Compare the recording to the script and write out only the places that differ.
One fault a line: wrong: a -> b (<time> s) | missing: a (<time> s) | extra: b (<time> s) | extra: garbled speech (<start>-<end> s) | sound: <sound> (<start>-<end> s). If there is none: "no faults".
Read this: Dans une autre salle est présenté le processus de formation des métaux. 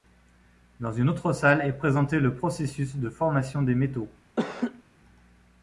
sound: laugh (4.4-4.8 s)